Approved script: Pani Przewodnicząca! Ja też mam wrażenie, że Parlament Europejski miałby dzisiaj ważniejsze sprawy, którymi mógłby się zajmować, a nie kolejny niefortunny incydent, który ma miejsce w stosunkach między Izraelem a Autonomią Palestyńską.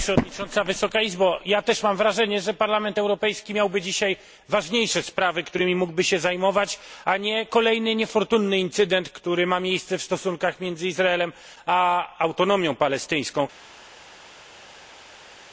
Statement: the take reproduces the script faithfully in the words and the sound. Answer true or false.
true